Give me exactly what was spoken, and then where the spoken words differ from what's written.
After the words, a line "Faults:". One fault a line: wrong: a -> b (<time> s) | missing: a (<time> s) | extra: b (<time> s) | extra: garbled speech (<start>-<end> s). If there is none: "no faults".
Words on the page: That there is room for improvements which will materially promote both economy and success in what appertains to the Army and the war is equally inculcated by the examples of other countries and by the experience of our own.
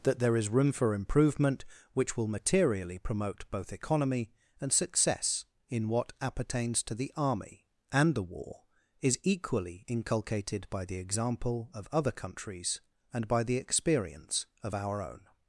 That there is room for improvement which will materially promote both economy and success in what appertains to the Army and the war is equally inculcated by the example of other countries and by the experience of our own.
Faults:
wrong: improvements -> improvement (0.9 s)
wrong: examples -> example (11.0 s)